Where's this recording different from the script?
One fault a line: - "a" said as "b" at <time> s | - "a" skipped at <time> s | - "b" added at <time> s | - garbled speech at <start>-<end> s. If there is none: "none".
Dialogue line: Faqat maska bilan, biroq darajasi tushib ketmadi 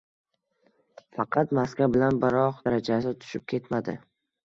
none